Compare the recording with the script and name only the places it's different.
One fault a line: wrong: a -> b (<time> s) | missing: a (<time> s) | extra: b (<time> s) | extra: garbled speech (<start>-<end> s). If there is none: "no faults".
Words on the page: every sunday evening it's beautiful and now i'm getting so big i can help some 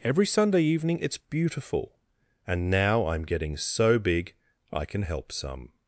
no faults